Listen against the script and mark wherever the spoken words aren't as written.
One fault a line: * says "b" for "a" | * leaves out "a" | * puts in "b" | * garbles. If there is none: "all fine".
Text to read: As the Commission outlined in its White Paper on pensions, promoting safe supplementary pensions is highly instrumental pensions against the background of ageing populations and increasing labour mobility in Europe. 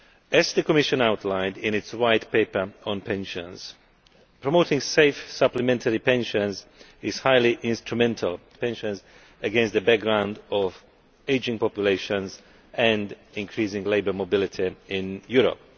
all fine